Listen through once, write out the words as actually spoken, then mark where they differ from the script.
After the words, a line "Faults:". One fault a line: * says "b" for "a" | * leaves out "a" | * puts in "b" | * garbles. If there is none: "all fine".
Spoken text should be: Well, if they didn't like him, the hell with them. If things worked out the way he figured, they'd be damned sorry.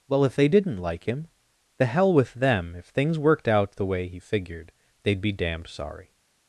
Well, if they didn't like him, the hell with them. If things worked out the way he figured, they'd be damned sorry.
Faults:
all fine